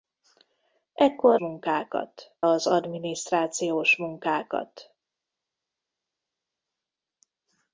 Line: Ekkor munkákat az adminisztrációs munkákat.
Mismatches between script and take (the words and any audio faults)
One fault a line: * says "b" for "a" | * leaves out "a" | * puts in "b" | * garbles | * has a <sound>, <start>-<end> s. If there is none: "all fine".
all fine